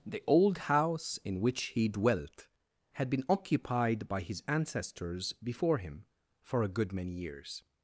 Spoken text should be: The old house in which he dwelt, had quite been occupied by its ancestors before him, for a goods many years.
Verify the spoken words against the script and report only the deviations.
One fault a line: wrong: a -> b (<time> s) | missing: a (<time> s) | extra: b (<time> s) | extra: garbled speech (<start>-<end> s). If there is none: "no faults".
missing: quite (3.1 s)
wrong: its -> his (4.2 s)
wrong: goods -> good (6.7 s)